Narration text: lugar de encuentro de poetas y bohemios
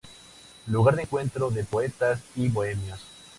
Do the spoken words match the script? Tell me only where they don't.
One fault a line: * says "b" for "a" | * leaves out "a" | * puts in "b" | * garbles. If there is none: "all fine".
all fine